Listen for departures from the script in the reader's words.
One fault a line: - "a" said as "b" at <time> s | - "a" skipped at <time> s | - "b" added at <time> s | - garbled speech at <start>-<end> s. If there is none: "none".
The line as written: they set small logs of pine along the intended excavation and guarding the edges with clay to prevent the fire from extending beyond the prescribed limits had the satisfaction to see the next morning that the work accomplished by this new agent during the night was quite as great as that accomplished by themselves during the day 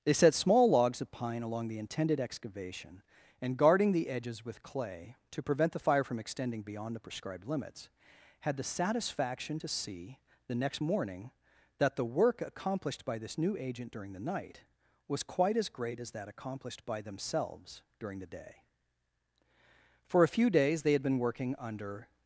- "for a few days they had been working under" added at 20.0 s